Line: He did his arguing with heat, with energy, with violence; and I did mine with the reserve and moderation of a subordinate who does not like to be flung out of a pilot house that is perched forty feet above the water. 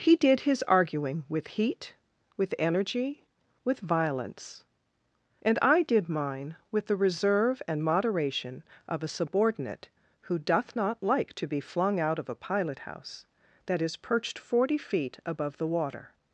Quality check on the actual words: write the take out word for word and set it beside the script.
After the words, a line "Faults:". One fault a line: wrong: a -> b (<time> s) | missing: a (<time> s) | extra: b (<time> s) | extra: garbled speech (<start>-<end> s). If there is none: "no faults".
He did his arguing with heat, with energy, with violence; and I did mine with the reserve and moderation of a subordinate who doth not like to be flung out of a pilot house that is perched forty feet above the water.
Faults:
wrong: does -> doth (10.4 s)